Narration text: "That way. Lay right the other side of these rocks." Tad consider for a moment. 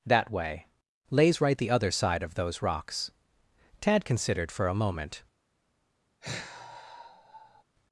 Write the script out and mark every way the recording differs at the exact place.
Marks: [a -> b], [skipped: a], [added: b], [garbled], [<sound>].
"That way. [Lay -> Lays] right the other side of [these -> those] rocks." Tad [consider -> considered] for a moment. [sigh]